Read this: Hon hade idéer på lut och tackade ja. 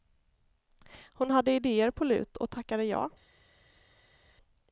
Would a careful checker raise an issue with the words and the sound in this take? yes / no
no